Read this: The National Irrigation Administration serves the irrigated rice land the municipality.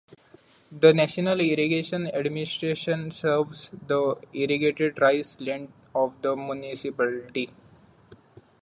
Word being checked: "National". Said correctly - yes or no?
yes